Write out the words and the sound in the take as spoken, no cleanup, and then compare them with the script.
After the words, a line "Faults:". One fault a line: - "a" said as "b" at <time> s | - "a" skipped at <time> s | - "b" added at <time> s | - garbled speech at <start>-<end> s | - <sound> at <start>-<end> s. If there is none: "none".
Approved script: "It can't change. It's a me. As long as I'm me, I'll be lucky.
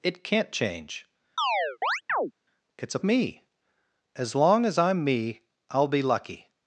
"It can't change. It's a me. As long as I'm me, I'll be lucky.
Faults:
- chirp at 1.4-2.3 s